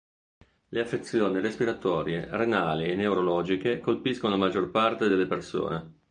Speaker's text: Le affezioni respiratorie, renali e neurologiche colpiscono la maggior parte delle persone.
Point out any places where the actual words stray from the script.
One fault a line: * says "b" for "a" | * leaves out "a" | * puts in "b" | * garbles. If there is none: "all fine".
all fine